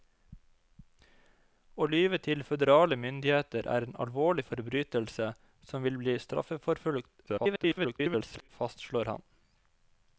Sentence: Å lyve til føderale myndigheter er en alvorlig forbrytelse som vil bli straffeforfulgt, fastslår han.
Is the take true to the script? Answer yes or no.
no